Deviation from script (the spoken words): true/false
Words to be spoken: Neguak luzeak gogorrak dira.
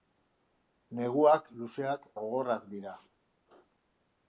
false